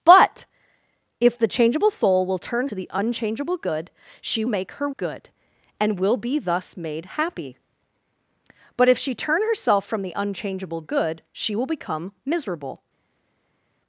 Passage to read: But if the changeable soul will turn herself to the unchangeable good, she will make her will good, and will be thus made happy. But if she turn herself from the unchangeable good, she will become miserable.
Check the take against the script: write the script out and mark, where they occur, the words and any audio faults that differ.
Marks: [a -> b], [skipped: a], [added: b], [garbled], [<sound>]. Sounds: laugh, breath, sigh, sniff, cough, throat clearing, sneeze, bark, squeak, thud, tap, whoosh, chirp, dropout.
But if the changeable soul will turn [skipped: herself] to the unchangeable good, she [skipped: will] make her [skipped: will] good, and will be thus made happy. But if she turn herself from the unchangeable good, she will become miserable.